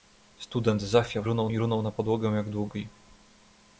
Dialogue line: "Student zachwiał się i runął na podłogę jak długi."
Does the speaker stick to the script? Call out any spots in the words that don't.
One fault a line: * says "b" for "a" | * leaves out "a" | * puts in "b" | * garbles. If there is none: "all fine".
* says "runął" for "się"